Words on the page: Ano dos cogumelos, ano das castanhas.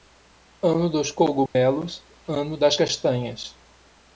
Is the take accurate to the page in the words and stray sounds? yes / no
no